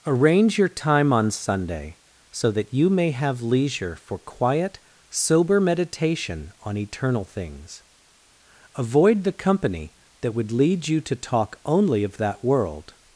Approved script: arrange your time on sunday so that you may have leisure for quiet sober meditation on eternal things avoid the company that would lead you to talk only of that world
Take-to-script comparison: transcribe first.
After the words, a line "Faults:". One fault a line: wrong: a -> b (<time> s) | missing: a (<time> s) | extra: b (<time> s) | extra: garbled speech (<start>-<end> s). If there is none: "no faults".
arrange your time on sunday so that you may have leisure for quiet sober meditation on eternal things avoid the company that would lead you to talk only of that world
Faults:
no faults